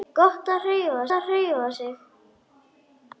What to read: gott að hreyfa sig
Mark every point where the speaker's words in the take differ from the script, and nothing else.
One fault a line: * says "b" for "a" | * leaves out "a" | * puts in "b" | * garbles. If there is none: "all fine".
* puts in "að hreyfa"